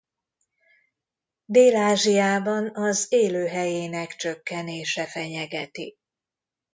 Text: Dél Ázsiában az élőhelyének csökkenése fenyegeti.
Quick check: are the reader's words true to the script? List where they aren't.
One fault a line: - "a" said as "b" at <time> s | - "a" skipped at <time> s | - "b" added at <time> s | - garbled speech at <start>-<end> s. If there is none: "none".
none